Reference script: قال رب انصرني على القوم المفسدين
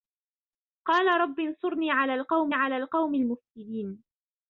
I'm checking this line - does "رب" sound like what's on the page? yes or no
yes